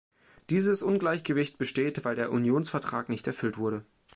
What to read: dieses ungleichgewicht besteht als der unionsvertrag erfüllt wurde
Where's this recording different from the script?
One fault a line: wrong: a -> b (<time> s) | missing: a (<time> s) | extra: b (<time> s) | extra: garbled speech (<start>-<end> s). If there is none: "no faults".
wrong: als -> weil (2.0 s)
extra: nicht (3.1 s)